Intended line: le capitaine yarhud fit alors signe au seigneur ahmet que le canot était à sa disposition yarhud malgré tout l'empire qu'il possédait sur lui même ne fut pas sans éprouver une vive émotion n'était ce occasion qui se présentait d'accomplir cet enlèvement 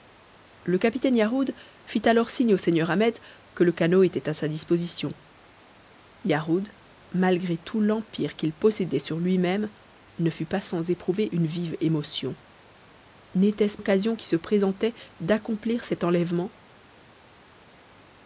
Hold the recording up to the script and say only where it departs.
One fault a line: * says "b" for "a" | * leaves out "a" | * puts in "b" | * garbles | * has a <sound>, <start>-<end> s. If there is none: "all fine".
all fine